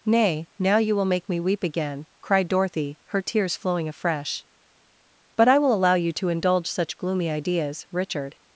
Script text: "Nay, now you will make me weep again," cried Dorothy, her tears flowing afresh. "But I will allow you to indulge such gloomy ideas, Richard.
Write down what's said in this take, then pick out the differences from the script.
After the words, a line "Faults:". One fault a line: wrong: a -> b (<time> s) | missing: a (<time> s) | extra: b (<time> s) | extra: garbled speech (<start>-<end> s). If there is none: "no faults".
"Nay, now you will make me weep again," cried Dorothy, her tears flowing afresh. "But I will allow you to indulge such gloomy ideas, Richard.
Faults:
no faults